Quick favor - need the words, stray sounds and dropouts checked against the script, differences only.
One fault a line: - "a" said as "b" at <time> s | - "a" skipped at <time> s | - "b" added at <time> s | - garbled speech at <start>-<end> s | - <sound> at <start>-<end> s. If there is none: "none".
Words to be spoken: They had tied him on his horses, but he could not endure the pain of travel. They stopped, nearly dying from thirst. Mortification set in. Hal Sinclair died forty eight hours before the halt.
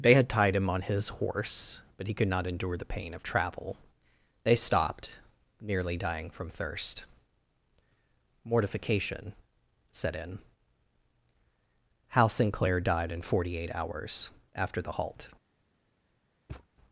- "horses" said as "horse" at 1.1 s
- "in" added at 13.1 s
- "before" said as "after" at 14.5 s
- thud at 16.5-16.7 s